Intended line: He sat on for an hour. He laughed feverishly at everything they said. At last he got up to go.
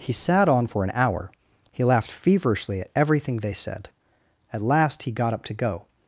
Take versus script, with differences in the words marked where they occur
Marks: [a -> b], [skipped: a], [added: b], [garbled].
He sat on for an hour. He laughed feverishly at everything they said. At last he got up to go.